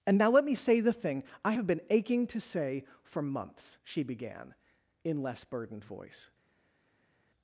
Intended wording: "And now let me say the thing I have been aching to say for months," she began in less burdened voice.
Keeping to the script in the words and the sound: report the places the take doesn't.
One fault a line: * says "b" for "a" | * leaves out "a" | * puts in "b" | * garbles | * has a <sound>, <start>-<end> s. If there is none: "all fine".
all fine